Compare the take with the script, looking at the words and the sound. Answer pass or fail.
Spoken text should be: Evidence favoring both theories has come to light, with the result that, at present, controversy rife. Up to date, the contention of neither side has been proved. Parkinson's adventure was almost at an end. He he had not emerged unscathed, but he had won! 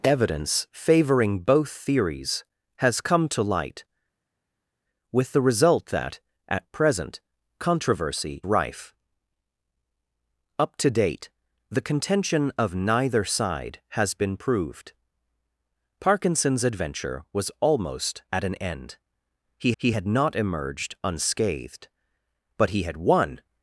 pass